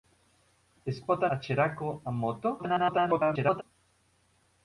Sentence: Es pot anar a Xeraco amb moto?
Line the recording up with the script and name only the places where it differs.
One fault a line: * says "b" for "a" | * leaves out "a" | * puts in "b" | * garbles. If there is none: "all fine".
* leaves out "anar"
* garbles